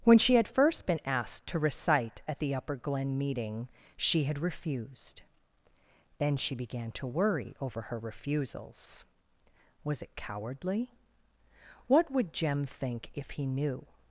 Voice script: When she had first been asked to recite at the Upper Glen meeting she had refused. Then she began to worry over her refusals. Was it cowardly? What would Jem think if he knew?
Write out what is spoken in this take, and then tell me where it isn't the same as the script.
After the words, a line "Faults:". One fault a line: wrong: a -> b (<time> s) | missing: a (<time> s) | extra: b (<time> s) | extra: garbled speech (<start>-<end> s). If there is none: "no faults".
When she had first been asked to recite at the Upper Glen meeting she had refused. Then she began to worry over her refusals. Was it cowardly? What would Jem think if he knew?
Faults:
no faults